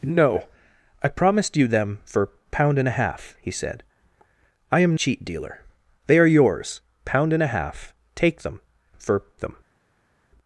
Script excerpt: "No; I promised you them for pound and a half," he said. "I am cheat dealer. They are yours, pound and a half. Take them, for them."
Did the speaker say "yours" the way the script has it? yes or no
yes